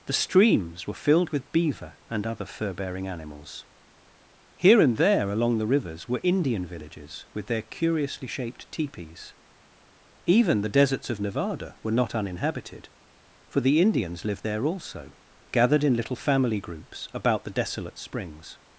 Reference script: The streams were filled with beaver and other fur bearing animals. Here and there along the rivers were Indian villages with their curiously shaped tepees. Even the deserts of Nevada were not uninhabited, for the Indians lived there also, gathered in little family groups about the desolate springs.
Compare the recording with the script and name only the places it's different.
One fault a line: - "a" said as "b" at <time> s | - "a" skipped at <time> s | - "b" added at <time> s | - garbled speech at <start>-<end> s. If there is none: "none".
none